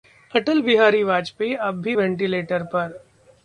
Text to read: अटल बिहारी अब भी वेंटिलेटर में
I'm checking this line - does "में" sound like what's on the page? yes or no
no